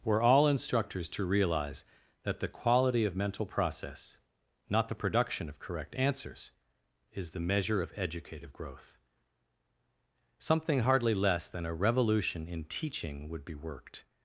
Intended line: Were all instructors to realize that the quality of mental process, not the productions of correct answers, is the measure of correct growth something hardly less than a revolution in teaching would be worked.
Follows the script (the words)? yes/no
no